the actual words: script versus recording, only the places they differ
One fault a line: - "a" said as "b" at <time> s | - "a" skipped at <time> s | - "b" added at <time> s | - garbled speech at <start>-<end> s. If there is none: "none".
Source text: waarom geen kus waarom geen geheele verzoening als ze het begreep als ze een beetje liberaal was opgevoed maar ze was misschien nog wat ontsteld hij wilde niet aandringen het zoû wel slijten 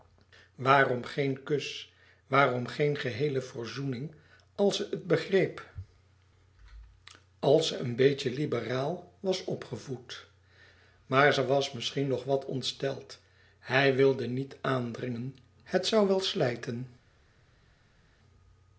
none